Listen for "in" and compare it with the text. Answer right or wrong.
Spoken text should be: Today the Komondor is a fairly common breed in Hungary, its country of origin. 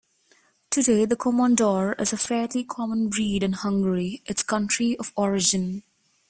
right